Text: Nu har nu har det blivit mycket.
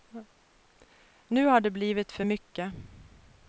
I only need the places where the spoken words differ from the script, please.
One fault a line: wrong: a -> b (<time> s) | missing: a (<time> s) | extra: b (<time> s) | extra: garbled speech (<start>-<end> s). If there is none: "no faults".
missing: nu har (1.6 s)
extra: för (2.1 s)